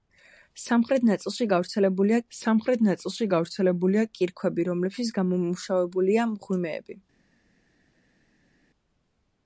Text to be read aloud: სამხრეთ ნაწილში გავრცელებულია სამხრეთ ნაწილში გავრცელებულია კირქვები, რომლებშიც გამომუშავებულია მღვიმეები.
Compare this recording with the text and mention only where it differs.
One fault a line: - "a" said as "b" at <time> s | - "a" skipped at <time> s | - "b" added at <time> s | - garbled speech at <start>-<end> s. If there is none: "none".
none